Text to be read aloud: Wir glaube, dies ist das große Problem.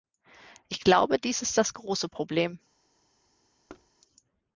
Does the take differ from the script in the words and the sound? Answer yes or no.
yes